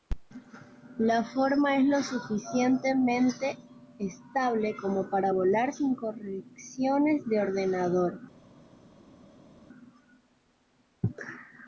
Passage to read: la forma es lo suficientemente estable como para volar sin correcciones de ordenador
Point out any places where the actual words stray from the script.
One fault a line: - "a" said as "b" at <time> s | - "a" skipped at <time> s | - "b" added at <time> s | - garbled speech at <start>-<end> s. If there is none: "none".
none